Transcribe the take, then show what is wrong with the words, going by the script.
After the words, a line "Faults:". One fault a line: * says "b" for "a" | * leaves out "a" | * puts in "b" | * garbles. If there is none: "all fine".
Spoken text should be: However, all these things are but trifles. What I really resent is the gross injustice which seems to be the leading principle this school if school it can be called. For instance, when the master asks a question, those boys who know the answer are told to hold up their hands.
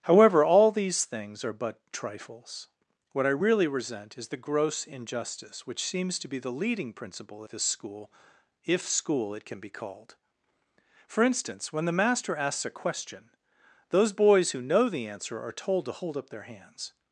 However, all these things are but trifles. What I really resent is the gross injustice which seems to be the leading principle this school if school it can be called. For instance, when the master asks a question, those boys who know the answer are told to hold up their hands.
Faults:
all fine